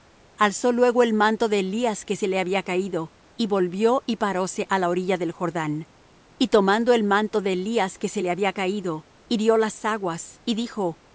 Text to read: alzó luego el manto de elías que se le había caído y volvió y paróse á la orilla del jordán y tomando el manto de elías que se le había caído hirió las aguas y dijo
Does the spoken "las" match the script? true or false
true